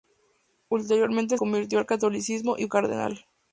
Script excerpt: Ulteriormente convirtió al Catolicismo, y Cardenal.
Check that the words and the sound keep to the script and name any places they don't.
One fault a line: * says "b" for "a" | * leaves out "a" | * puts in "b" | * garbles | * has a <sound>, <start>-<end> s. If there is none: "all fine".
all fine